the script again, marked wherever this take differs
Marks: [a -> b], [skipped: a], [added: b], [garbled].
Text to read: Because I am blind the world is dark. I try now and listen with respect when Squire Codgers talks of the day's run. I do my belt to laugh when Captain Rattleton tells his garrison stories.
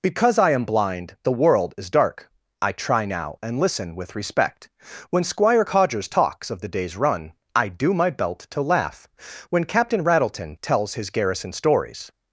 Because I am blind the world is dark. I try now and listen with respect when Squire Codgers talks of the day's run. I do my belt to laugh when Captain Rattleton tells his garrison stories.